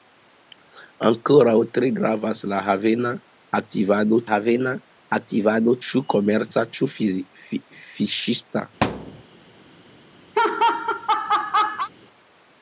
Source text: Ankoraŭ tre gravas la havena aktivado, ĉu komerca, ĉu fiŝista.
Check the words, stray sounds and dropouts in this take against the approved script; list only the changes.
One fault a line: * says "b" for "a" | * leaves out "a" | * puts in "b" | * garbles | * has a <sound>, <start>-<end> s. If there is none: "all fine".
* puts in "havena aktivado"
* has a thud, 8.8-9.2 s
* has a laugh, 10.3-11.9 s